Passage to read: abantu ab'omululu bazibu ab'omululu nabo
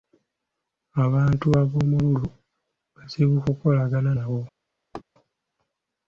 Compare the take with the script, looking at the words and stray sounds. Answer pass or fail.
fail